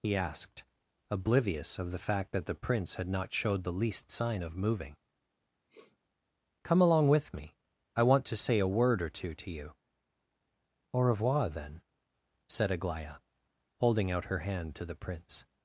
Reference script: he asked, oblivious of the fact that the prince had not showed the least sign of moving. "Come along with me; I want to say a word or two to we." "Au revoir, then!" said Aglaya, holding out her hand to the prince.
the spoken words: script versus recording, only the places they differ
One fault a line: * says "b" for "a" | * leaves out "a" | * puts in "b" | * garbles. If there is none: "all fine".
* says "you" for "we"